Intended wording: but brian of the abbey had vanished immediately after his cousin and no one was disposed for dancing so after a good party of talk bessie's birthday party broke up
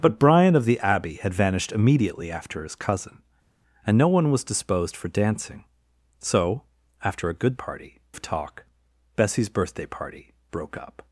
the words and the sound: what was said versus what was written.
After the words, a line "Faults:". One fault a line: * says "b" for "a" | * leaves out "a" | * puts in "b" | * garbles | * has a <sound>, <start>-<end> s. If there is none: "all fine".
but brian of the abbey had vanished immediately after his cousin and no one was disposed for dancing so after a good party of talk bessie's birthday party broke up
Faults:
all fine